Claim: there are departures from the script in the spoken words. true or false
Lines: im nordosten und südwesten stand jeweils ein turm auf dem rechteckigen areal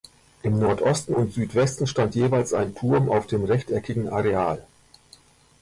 false